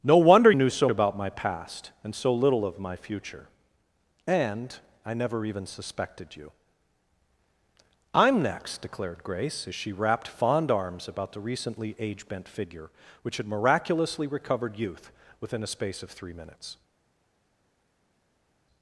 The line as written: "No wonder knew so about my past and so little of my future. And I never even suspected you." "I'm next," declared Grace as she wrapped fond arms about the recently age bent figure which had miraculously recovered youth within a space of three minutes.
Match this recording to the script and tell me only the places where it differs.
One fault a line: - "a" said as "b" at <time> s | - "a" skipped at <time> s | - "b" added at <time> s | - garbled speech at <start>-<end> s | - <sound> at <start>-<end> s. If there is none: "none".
none